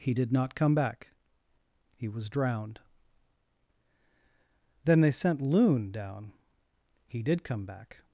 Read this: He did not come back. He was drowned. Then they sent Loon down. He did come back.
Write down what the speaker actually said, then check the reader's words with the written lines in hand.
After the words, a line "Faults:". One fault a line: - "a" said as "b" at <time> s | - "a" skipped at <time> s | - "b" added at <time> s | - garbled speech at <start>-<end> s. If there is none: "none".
He did not come back. He was drowned. Then they sent Loon down. He did come back.
Faults:
none